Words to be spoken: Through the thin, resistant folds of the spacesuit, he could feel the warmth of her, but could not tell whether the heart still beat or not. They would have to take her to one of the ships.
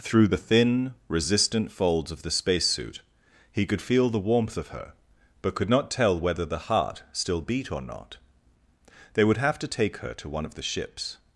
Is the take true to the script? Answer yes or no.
yes